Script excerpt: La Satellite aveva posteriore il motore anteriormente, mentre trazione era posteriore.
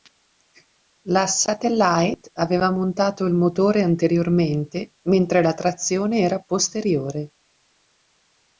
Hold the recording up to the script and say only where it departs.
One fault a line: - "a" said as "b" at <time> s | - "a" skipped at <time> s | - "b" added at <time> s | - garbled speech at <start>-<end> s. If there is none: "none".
- "posteriore" said as "montato" at 2.7 s
- "la" added at 5.4 s